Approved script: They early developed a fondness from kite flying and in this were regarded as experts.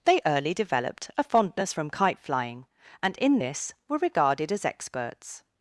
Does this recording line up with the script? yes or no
yes